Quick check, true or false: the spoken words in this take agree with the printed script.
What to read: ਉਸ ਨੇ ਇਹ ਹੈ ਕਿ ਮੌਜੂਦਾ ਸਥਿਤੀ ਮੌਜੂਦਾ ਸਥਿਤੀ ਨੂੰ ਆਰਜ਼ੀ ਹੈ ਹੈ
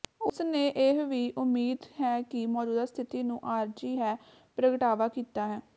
false